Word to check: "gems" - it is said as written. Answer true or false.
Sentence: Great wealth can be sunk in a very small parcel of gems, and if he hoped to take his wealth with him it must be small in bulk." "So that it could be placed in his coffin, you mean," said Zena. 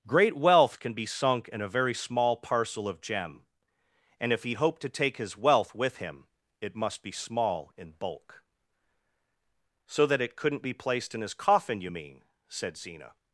false